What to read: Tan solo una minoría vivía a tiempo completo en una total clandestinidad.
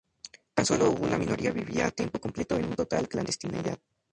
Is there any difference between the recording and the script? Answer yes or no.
no